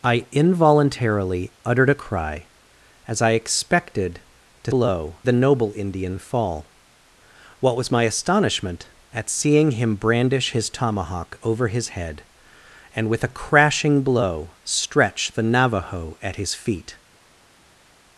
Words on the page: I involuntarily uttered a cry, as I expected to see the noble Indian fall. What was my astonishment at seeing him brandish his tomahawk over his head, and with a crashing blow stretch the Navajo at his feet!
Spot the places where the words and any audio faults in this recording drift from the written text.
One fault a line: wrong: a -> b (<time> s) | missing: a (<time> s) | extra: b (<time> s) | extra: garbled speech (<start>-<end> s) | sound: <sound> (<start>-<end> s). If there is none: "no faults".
wrong: see -> blow (4.7 s)